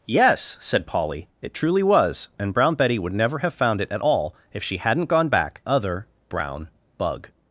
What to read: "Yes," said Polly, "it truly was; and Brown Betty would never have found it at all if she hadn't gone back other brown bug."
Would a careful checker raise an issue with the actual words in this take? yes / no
no